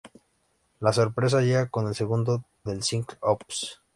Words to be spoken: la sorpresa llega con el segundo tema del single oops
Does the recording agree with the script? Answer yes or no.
no